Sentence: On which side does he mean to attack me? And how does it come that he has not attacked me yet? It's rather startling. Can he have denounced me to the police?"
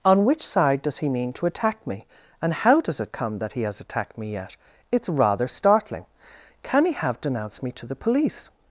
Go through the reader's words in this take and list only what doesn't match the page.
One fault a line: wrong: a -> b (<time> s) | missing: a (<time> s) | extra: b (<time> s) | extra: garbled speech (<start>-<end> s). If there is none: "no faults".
missing: not (3.8 s)